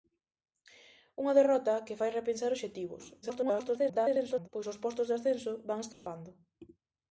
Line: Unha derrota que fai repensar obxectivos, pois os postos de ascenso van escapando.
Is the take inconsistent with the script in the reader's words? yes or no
yes